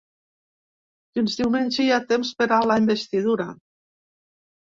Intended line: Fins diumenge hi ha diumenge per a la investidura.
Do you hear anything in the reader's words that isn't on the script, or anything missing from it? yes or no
yes